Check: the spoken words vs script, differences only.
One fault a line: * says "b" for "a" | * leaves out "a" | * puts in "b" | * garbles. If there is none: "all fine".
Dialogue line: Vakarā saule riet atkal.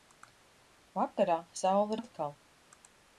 * leaves out "riet"